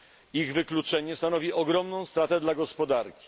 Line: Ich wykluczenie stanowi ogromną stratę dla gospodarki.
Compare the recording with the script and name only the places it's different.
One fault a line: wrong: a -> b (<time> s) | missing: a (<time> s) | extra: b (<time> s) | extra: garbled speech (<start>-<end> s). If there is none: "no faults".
no faults